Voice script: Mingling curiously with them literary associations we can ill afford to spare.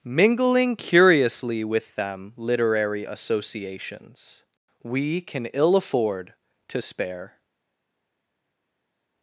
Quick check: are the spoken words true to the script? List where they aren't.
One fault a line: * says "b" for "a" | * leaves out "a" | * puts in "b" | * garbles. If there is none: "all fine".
all fine